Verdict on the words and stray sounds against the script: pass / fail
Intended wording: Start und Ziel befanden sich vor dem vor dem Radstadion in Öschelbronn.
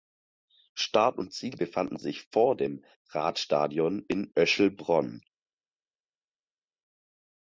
fail